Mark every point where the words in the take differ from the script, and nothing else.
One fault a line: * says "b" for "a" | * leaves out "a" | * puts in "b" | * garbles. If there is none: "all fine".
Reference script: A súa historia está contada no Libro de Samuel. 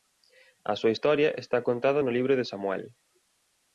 all fine